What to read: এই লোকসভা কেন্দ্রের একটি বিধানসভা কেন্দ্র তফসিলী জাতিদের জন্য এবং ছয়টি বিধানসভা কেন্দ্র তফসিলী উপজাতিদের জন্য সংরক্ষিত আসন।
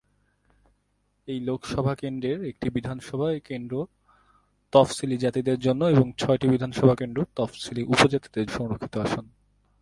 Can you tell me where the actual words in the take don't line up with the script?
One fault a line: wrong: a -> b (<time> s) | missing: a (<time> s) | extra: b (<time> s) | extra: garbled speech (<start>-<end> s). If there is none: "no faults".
missing: জন্য (8.5 s)